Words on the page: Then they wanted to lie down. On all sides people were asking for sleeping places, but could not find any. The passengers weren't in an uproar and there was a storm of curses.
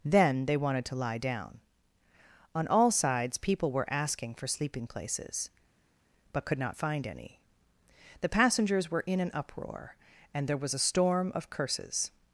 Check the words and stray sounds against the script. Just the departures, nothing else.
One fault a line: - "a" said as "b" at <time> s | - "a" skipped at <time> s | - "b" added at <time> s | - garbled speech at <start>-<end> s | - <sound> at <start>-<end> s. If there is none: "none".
- "weren't" said as "were" at 8.9 s